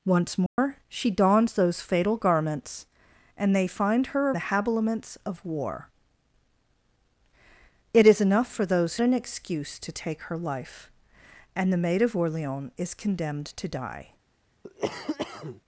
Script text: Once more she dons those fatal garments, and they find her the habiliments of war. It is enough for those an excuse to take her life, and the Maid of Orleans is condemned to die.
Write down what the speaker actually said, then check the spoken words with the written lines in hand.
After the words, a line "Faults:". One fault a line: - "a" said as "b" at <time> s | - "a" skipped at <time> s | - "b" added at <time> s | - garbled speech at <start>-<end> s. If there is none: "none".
Once more she dons those fatal garments, and they find her the habiliments of war. It is enough for those an excuse to take her life, and the Maid of Orleans is condemned to die.
Faults:
none